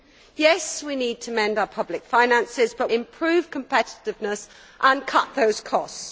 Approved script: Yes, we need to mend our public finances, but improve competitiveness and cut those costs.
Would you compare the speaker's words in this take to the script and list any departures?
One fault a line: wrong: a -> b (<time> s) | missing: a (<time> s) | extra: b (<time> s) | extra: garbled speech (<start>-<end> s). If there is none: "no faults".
no faults